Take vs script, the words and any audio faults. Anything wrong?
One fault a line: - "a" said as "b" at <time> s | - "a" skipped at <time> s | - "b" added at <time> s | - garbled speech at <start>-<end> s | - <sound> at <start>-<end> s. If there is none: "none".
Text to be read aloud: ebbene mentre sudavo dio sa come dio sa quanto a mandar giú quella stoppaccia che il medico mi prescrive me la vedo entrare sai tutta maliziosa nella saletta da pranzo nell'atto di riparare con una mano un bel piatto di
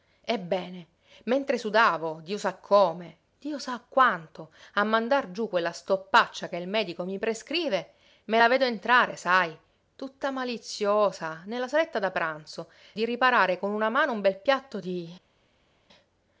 - "nell'atto" skipped at 12.7 s